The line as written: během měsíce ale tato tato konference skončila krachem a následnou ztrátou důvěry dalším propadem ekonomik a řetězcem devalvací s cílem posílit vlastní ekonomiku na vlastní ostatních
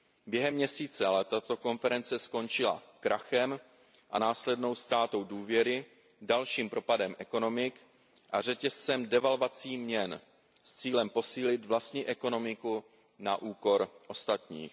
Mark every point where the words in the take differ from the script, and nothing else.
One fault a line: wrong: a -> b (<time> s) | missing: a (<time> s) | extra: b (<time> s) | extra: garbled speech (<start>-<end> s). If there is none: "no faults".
missing: tato (1.6 s)
extra: měn (9.8 s)
wrong: vlastní -> úkor (13.4 s)